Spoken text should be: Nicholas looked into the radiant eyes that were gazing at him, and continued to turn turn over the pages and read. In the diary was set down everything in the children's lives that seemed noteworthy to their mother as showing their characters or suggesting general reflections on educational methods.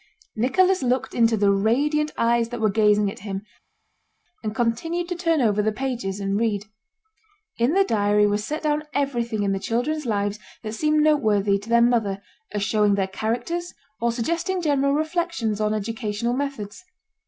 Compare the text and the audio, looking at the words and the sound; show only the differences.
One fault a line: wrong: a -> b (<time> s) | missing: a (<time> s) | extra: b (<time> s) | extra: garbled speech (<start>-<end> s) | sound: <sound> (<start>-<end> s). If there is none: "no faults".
missing: turn (5.4 s)